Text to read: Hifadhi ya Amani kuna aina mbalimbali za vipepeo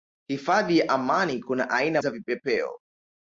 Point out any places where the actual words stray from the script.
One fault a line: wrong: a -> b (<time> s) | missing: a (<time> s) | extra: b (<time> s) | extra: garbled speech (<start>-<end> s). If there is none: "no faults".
missing: mbalimbali (2.0 s)